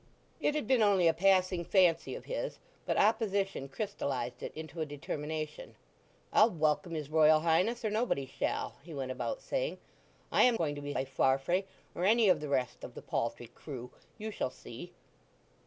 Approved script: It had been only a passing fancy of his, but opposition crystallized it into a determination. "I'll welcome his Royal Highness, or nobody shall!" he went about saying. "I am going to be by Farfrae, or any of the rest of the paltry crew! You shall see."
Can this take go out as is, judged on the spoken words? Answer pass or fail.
pass